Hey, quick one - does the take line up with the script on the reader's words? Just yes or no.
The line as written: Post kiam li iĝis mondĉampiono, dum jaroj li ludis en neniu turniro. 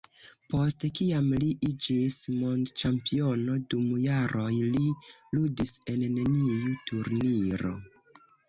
yes